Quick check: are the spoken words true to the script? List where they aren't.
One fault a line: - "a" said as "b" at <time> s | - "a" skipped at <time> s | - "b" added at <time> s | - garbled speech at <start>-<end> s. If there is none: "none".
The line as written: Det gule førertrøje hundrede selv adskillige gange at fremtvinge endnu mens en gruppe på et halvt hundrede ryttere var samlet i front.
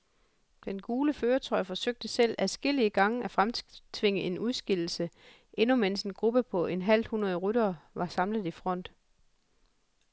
- "Det" said as "Den" at 0.7 s
- "hundrede" said as "forsøgte" at 1.6 s
- "en udskillelse" added at 4.2 s